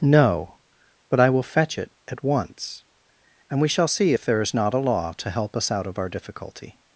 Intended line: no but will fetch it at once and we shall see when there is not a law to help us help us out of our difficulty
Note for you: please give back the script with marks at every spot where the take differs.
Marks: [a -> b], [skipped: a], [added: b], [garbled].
no but [added: i] will fetch it at once and we shall see [when -> if] there is not a law to help us [skipped: help us] out of our difficulty